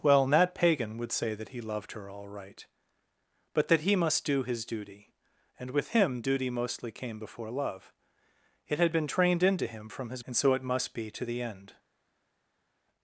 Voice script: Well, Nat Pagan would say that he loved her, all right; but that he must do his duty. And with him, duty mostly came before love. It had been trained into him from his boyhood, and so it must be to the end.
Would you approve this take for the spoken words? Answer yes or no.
no